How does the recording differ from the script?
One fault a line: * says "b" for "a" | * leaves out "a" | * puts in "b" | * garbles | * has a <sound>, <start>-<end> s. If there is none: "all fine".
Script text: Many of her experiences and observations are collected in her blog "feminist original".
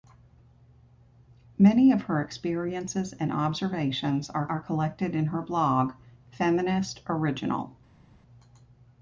* puts in "are"